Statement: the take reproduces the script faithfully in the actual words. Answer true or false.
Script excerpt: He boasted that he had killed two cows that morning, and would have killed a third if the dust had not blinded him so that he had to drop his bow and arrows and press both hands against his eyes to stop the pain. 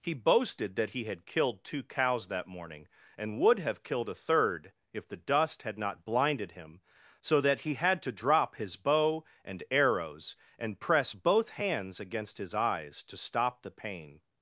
true